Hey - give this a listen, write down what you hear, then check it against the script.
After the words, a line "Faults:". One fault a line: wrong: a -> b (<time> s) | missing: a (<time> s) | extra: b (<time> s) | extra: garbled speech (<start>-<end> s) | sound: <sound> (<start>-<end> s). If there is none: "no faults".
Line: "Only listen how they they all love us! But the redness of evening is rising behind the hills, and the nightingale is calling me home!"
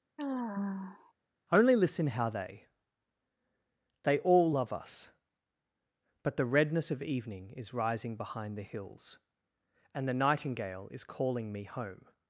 "Only listen how they they all love us! But the redness of evening is rising behind the hills, and the nightingale is calling me home!"
Faults:
sound: sigh (0.2-1.1 s)